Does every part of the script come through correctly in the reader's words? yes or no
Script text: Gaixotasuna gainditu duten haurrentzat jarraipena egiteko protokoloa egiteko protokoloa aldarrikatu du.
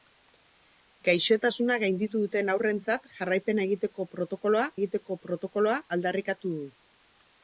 yes